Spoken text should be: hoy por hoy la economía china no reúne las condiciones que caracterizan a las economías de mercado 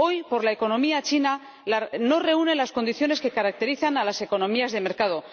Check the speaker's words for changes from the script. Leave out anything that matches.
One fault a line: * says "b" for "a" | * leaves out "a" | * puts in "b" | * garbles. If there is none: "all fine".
all fine